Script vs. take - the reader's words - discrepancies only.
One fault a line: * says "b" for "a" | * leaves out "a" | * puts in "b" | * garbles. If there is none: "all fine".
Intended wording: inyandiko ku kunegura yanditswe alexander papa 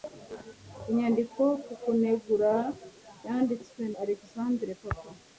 all fine